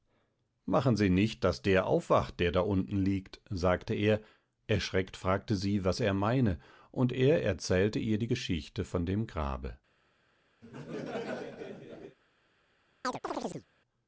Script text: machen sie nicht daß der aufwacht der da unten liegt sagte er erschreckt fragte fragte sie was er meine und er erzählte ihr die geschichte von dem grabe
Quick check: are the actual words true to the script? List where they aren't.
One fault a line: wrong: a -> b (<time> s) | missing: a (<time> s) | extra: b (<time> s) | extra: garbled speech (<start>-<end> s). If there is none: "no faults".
missing: fragte (5.5 s)